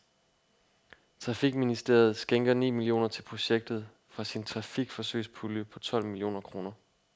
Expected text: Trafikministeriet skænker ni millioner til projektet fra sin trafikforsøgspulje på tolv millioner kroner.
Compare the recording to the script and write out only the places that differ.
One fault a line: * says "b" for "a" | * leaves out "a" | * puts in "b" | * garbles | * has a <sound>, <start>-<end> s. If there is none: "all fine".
all fine